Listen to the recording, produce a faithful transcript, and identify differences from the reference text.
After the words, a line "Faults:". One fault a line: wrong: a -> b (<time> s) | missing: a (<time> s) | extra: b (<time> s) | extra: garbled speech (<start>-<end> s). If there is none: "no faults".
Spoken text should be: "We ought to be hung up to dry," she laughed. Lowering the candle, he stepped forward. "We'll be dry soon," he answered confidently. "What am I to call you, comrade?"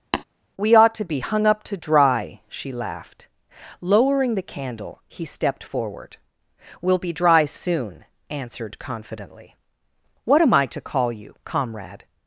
"We ought to be hung up to dry," she laughed. Lowering the candle, he stepped forward. "We'll be dry soon," answered confidently. "What am I to call you, comrade?"
Faults:
missing: he (8.0 s)